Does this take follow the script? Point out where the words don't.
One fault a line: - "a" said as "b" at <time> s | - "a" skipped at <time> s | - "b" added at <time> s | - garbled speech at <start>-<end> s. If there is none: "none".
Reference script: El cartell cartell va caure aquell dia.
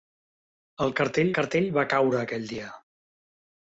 none